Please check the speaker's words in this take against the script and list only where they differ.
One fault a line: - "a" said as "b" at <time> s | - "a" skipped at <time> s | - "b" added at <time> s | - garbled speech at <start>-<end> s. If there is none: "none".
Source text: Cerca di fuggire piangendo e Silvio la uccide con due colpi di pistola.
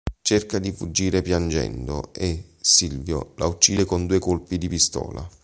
none